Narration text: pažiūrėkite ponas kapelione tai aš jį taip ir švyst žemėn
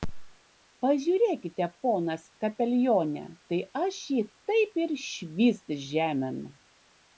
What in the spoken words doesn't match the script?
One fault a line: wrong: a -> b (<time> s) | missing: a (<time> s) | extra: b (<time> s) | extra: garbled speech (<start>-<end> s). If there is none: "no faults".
no faults